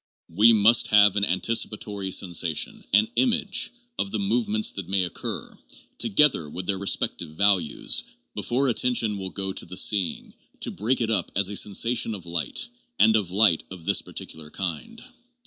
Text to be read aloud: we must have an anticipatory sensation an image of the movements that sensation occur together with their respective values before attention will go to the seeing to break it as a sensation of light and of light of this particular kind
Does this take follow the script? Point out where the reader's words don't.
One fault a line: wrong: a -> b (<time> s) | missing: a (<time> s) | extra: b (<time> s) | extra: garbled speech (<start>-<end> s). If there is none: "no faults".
wrong: sensation -> may (4.9 s)
extra: up (11.1 s)